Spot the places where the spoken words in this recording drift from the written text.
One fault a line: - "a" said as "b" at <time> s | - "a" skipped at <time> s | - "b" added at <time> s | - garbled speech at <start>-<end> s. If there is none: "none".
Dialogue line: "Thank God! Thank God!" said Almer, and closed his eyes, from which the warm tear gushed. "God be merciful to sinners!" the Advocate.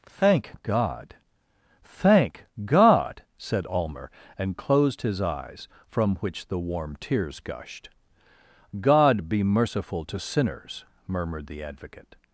- "tear" said as "tears" at 7.0 s
- "murmured" added at 11.1 s